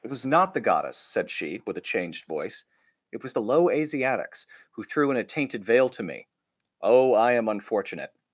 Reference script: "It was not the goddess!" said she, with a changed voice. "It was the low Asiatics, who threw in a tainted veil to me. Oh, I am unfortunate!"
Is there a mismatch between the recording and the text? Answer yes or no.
no